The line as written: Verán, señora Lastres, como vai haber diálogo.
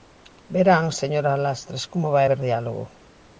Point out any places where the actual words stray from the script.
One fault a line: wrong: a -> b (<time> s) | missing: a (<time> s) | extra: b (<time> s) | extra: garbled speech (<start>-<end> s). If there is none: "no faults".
no faults